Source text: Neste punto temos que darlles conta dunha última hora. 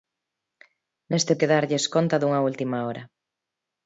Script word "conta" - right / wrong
right